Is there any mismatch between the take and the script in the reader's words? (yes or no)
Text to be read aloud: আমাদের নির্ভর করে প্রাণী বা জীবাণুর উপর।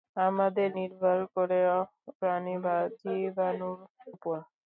no